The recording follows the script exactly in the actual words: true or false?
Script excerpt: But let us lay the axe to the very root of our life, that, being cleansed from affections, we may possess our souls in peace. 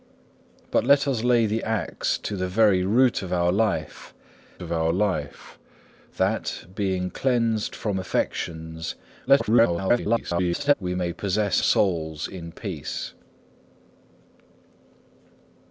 false